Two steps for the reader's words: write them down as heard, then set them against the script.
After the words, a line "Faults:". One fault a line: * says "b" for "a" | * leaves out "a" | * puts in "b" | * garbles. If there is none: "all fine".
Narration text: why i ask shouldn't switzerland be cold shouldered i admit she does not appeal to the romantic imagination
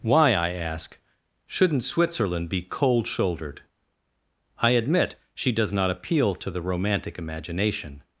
why i ask shouldn't switzerland be cold shouldered i admit she does not appeal to the romantic imagination
Faults:
all fine